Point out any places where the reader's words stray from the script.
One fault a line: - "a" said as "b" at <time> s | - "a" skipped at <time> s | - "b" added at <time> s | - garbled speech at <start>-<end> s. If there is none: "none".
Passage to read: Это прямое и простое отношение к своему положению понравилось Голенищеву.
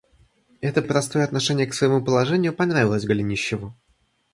- "прямое" skipped at 0.8 s